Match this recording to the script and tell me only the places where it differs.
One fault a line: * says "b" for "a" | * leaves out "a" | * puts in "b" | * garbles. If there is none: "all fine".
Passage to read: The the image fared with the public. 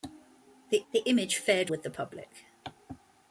all fine